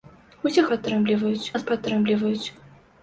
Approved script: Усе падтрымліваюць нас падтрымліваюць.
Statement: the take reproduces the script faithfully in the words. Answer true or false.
true